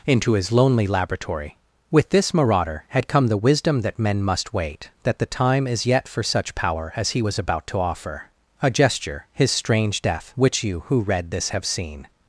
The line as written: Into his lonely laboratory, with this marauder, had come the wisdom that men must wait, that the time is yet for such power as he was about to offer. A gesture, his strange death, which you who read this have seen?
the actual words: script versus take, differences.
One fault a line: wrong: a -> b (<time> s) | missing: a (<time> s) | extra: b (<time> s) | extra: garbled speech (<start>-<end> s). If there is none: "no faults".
no faults